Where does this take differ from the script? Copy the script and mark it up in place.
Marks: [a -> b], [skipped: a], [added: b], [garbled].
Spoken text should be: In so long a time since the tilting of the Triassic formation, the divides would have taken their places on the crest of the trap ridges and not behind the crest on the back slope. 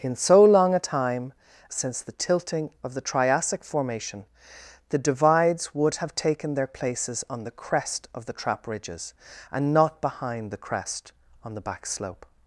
In so long a time since the tilting of the Triassic formation, the divides would have taken their places on the crest of the trap ridges and not behind the crest on the back slope.